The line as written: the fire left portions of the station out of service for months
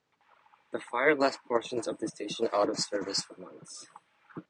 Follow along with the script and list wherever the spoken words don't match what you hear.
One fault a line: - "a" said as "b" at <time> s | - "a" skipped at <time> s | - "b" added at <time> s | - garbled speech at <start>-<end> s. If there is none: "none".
none